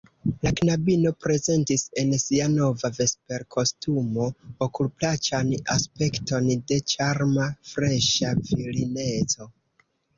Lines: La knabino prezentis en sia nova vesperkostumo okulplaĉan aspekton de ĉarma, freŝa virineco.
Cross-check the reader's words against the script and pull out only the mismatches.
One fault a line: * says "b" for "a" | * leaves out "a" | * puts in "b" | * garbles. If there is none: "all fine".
all fine